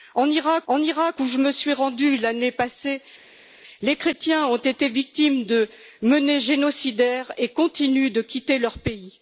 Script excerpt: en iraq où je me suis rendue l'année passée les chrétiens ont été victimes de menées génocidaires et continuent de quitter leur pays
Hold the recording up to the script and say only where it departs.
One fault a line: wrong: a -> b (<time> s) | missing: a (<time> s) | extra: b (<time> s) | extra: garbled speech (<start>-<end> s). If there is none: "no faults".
extra: en iraq (0.7 s)